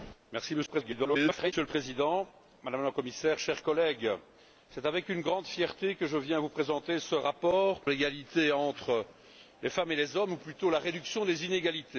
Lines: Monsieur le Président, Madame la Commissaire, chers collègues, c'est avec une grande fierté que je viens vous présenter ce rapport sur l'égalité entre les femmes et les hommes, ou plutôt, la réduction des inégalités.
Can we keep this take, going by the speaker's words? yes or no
no